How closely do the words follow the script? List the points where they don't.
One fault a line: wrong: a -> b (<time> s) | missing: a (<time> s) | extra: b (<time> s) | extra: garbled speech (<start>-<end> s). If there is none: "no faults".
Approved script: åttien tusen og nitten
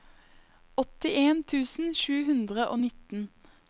extra: sju hundre (2.0 s)